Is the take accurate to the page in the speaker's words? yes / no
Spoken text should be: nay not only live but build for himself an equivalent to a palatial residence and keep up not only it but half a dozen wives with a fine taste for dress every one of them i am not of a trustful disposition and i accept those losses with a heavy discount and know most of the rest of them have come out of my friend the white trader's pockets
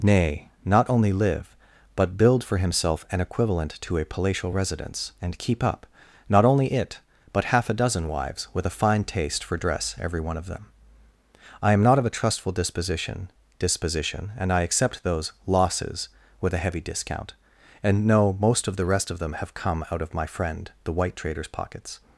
no